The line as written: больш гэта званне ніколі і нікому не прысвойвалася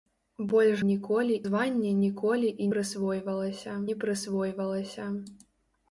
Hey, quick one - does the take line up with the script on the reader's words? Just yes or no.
no